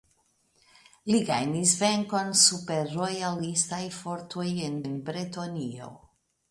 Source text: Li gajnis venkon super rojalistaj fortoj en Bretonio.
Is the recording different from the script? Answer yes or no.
yes